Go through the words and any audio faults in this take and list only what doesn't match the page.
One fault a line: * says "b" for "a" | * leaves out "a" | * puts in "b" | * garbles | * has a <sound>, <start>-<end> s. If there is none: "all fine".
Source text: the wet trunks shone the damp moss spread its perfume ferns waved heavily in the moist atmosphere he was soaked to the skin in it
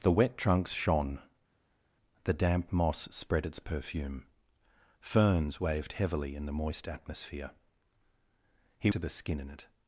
* leaves out "was soaked"